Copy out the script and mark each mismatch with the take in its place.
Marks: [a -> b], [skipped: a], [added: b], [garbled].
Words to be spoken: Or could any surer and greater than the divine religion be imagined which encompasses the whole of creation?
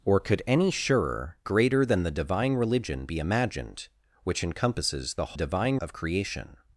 Or could any surer [skipped: and] greater than the divine religion be imagined which encompasses the [whole -> divine] of creation?